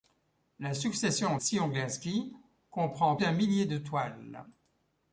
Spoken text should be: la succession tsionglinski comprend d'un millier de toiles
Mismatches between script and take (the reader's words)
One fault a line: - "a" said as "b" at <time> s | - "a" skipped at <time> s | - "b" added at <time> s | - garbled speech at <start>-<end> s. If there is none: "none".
none